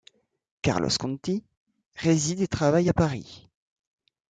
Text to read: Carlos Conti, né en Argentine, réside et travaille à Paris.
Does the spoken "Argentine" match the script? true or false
false